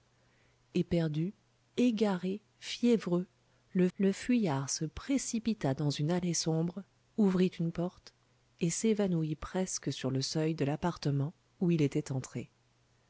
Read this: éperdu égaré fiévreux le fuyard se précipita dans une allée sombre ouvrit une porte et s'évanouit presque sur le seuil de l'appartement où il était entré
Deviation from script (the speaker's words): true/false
true